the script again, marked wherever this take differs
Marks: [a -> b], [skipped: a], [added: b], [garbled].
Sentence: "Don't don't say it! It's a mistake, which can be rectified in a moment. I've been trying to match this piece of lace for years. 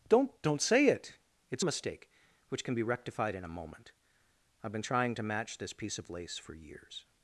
"Don't don't say it! It's a mistake, which can be rectified in a moment. I've been trying to match this piece of lace for years.